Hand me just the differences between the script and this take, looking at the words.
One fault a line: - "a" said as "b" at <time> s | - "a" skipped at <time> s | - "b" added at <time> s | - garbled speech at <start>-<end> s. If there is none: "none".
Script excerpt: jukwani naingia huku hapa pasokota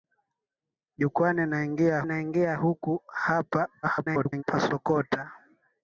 - "naingia" added at 2.0 s
- garbled speech at 3.8-4.4 s